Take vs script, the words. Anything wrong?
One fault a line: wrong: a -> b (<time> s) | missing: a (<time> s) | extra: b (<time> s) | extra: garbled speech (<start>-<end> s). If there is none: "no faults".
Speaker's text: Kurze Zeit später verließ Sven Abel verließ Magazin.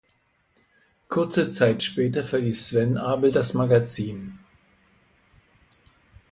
wrong: verließ -> das (3.3 s)